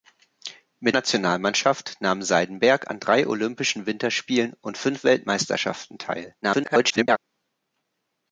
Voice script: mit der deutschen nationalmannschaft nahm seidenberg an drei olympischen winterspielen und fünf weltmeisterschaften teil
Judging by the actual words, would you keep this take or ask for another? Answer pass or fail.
fail